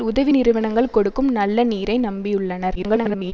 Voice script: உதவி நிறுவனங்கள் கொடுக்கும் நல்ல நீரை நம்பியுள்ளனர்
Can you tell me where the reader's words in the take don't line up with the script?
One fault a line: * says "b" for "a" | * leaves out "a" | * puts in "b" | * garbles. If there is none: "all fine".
* garbles